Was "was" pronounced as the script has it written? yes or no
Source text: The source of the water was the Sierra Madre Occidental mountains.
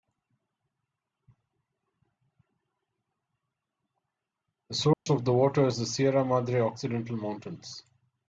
no